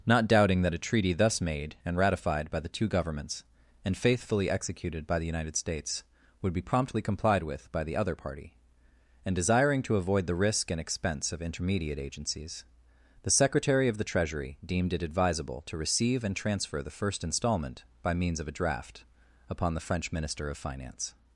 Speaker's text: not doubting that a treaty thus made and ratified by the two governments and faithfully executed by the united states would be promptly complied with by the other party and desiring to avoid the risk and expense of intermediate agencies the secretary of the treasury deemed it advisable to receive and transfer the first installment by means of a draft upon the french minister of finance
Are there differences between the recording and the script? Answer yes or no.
no